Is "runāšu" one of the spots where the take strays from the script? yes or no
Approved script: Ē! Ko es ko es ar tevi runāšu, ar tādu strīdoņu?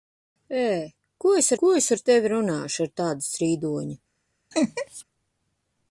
no